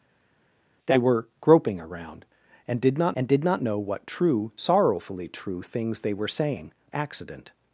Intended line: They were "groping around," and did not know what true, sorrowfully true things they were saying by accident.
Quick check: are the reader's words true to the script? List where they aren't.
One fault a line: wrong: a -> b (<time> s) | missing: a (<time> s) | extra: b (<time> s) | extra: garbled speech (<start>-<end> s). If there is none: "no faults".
extra: and did not (3.1 s)
missing: by (6.7 s)